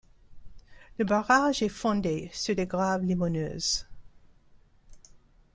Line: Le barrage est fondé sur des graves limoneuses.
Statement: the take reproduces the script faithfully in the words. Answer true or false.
true